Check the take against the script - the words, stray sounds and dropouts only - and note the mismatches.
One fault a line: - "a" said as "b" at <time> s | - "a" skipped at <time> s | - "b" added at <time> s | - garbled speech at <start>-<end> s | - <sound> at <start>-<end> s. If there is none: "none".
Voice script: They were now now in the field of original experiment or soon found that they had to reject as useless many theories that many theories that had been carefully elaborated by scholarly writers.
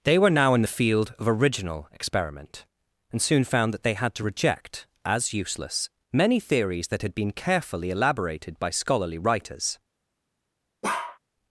- "now" skipped at 0.6 s
- "or" said as "and" at 3.1 s
- "many theories that" skipped at 7.0 s
- bark at 10.8-11.2 s